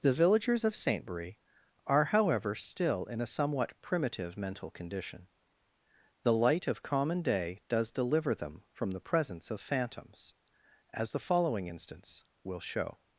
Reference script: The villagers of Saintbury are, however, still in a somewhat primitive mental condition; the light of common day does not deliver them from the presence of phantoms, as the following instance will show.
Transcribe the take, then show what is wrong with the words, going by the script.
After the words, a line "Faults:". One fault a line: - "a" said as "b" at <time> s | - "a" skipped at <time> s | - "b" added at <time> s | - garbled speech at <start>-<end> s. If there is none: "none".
The villagers of Saintbury are, however, still in a somewhat primitive mental condition; the light of common day does deliver them from the presence of phantoms, as the following instance will show.
Faults:
- "not" skipped at 7.9 s